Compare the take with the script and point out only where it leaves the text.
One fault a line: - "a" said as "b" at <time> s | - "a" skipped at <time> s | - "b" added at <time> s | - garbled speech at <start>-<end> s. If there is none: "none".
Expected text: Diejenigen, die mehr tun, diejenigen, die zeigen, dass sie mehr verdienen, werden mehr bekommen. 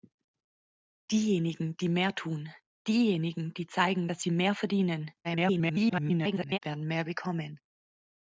- garbled speech at 5.2-6.6 s